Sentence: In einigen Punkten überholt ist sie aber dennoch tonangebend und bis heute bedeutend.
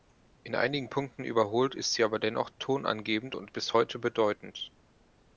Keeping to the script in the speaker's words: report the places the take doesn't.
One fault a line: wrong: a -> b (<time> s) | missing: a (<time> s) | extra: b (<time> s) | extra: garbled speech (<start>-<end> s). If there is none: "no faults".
no faults